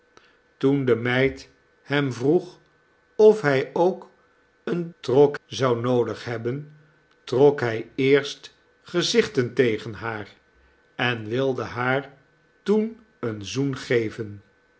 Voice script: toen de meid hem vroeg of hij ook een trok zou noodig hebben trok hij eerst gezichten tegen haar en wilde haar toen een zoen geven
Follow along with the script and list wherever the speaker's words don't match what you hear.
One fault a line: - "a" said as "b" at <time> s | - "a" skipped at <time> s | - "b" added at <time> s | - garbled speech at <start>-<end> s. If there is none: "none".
none